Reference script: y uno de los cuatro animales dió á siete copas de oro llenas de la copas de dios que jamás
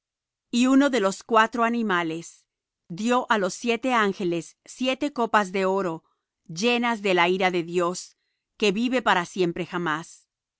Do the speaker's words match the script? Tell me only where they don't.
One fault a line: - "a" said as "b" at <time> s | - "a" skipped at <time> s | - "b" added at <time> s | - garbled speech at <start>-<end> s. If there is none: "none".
- "los" added at 3.4 s
- "ángeles siete" added at 3.9 s
- "copas" said as "ira" at 7.3 s
- "vive para siempre" added at 8.7 s